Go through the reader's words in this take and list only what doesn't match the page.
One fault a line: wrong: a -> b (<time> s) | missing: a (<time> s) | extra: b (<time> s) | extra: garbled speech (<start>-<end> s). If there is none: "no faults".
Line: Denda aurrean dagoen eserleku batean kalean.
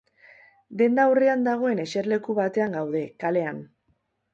extra: gaude (2.8 s)